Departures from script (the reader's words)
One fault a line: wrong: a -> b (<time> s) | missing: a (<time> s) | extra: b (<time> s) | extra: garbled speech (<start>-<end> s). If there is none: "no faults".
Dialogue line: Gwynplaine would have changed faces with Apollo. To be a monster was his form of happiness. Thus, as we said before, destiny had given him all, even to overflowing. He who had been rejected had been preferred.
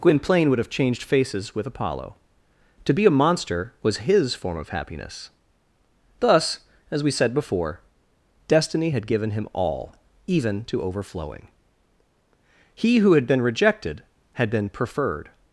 no faults